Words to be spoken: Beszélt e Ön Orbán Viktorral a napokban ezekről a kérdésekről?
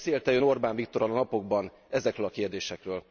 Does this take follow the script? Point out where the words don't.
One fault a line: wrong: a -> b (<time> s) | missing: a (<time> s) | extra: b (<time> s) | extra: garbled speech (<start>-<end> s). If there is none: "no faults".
no faults